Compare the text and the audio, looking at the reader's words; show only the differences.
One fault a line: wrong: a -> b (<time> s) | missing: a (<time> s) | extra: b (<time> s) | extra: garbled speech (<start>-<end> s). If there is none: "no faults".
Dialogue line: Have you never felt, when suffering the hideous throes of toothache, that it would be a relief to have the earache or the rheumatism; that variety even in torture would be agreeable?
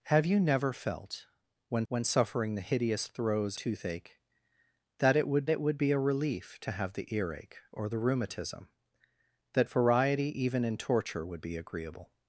extra: when (1.9 s)
missing: of (3.6 s)
extra: it would (5.5 s)